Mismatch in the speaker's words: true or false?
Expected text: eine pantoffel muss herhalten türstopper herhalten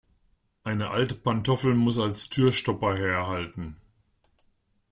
true